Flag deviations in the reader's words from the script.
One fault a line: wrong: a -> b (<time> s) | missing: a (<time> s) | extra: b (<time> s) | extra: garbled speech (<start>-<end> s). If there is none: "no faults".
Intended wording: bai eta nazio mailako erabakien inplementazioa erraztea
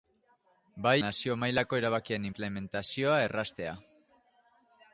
missing: eta (0.9 s)